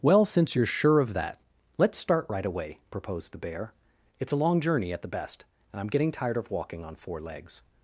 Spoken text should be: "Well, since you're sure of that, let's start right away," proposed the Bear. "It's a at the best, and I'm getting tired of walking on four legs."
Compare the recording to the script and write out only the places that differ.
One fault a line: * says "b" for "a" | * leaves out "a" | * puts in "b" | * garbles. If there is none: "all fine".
* puts in "long journey"